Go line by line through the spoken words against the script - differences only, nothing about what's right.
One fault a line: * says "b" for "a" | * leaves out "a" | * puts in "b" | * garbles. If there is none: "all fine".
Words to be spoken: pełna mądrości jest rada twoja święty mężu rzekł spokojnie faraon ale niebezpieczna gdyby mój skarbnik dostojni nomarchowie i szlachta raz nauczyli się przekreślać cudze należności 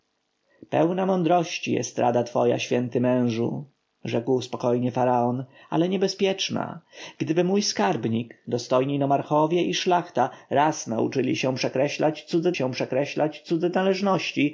* puts in "się przekreślać cudze"